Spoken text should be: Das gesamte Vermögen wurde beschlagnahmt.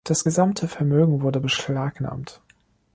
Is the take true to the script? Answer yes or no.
yes